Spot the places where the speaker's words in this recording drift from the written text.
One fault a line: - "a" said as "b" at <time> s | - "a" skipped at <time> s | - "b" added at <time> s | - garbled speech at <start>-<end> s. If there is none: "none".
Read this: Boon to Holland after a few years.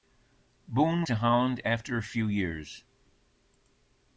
none